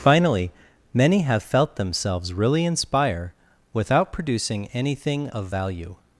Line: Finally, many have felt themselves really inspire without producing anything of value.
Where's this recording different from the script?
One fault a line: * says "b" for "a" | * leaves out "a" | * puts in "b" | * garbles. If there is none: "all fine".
all fine